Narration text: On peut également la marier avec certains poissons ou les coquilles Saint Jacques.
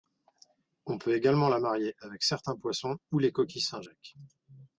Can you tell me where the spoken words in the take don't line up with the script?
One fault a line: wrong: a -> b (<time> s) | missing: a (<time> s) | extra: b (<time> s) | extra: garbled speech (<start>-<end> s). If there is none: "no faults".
no faults